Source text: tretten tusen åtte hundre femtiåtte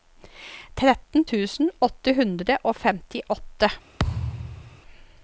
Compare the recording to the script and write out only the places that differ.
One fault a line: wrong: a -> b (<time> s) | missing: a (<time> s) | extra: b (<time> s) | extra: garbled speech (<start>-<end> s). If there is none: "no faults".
extra: og (2.7 s)